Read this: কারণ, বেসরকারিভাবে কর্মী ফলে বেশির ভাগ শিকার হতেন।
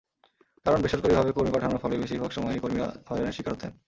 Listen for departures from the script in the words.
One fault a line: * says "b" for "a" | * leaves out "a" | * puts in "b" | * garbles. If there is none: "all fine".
* puts in "পাঠানোর"
* puts in "সময়ই কর্মীরা হয়রানির"